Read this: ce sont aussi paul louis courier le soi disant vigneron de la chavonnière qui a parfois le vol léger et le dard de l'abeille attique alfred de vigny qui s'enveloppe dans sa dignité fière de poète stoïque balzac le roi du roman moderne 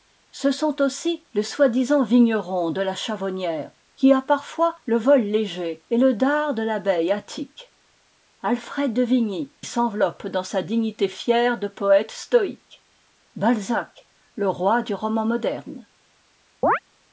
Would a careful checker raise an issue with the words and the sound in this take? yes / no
yes